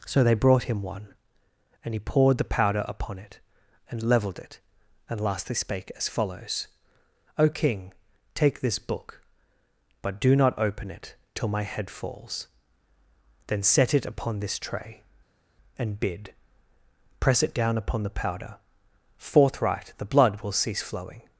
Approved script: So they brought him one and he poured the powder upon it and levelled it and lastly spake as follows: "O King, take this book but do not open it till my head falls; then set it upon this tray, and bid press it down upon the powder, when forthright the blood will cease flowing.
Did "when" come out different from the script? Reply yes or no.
yes